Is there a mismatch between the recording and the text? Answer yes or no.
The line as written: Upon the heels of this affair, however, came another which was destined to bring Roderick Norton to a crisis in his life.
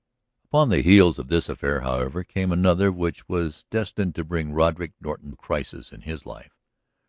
yes